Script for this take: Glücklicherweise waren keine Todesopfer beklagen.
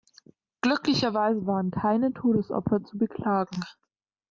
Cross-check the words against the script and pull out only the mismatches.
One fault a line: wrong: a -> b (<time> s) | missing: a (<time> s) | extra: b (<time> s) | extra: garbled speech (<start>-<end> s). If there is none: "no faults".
extra: zu (2.8 s)